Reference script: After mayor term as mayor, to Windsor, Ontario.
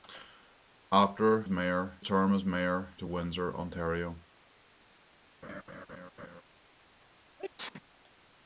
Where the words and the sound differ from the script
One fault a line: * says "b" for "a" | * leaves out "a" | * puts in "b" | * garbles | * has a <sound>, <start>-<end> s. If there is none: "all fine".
* has a laugh, 5.4-6.4 s
* has a sneeze, 7.4-7.8 s